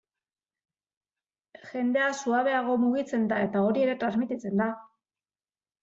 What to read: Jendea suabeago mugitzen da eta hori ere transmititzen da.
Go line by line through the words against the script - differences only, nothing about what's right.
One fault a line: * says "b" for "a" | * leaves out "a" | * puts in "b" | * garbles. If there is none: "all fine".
all fine